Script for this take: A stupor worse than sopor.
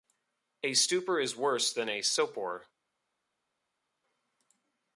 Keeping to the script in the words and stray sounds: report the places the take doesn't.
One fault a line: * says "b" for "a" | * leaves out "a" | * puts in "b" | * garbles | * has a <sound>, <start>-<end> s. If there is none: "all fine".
* puts in "is"
* puts in "a"